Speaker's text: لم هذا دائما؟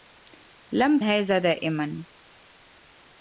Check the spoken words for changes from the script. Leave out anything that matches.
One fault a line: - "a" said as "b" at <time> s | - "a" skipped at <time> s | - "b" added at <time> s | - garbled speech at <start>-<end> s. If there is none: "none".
none